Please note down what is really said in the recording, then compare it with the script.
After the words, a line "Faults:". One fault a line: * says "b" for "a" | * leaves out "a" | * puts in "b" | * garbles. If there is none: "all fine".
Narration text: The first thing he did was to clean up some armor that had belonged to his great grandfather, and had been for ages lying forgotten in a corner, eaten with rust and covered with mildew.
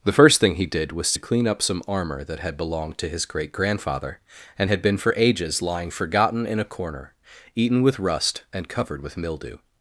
The first thing he did was to clean up some armor that had belonged to his great grandfather, and had been for ages lying forgotten in a corner, eaten with rust and covered with mildew.
Faults:
all fine